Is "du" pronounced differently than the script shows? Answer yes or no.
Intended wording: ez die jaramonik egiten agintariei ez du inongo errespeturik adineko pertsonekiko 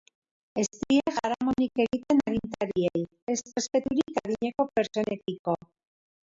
yes